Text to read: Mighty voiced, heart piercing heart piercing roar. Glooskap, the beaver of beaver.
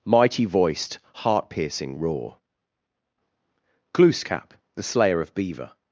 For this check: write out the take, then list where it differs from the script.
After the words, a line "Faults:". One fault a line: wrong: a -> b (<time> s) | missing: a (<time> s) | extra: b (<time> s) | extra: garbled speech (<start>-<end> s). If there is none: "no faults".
Mighty voiced, heart piercing roar. Glooskap, the slayer of beaver.
Faults:
missing: heart piercing (2.0 s)
wrong: beaver -> slayer (4.8 s)